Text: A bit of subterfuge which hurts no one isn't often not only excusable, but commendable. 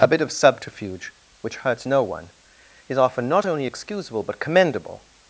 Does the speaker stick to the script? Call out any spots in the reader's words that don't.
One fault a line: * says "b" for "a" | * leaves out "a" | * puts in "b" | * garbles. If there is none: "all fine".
* says "is" for "isn't"